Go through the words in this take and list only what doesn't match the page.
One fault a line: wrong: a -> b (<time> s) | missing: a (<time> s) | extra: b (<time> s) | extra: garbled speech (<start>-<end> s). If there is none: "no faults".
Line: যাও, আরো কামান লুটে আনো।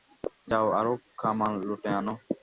no faults